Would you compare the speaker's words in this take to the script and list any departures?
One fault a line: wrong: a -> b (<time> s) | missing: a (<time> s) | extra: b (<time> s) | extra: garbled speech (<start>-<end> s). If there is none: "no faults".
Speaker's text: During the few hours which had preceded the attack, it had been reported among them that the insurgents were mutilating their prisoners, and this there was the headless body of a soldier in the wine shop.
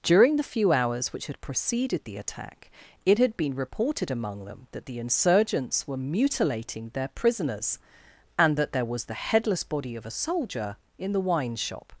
wrong: this -> that (8.6 s)